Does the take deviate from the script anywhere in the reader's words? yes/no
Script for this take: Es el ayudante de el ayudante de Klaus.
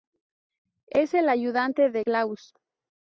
yes